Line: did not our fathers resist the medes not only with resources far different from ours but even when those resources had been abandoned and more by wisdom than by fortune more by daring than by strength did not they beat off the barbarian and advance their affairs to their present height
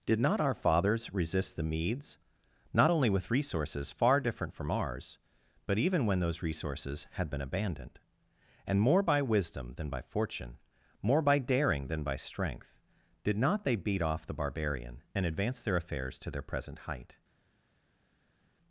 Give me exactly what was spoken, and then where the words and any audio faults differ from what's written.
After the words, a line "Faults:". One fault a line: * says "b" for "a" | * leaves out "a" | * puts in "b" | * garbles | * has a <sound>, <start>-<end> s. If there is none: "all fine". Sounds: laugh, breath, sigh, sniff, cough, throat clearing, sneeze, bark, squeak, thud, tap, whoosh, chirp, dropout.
did not our fathers resist the medes not only with resources far different from ours but even when those resources had been abandoned and more by wisdom than by fortune more by daring than by strength did not they beat off the barbarian and advance their affairs to their present height
Faults:
all fine